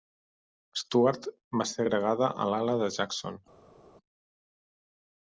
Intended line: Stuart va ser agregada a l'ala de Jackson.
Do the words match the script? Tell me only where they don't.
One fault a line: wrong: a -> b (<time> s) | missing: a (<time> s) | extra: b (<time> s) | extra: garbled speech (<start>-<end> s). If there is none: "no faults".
no faults